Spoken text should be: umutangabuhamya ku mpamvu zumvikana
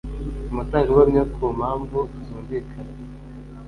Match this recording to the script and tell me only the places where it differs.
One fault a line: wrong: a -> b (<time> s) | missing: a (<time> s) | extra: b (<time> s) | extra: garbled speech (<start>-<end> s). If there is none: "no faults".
no faults